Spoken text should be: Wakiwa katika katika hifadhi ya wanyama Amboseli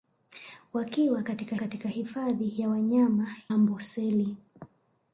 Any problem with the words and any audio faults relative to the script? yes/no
no